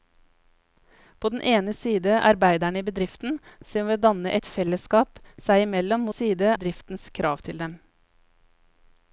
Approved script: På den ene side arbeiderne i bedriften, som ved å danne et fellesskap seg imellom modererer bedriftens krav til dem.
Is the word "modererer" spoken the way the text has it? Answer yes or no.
no